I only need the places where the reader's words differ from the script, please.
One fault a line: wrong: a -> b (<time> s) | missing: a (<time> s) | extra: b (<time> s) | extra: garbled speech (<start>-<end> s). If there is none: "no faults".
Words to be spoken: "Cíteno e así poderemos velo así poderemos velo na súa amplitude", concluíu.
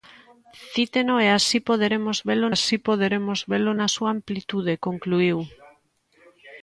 no faults